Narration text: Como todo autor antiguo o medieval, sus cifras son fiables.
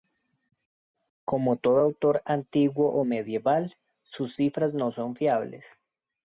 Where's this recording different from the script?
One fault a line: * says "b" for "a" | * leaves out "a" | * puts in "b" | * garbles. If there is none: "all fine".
* puts in "no"